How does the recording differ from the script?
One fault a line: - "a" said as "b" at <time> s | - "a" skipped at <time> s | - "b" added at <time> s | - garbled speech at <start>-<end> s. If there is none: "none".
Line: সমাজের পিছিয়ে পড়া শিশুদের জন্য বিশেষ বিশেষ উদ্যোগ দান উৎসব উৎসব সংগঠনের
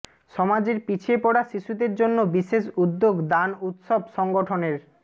- "বিশেষ" skipped at 2.6 s
- "উৎসব" skipped at 4.0 s